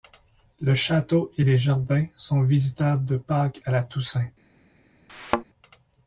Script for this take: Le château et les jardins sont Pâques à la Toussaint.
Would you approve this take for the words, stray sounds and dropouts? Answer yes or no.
no